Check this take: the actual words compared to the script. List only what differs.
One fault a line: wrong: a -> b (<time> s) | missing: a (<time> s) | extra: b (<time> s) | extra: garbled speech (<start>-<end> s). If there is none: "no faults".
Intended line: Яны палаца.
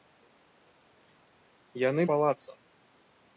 no faults